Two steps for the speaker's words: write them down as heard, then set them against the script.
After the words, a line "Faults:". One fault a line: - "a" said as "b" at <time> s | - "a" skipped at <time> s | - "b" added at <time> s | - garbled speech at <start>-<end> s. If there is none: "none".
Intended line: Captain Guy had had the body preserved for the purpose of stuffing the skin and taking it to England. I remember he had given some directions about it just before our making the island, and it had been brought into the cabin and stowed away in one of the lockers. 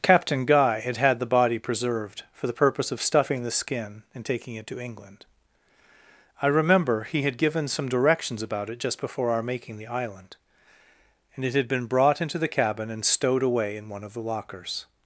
Captain Guy had had the body preserved for the purpose of stuffing the skin and taking it to England. I remember he had given some directions about it just before our making the island, and it had been brought into the cabin and stowed away in one of the lockers.
Faults:
none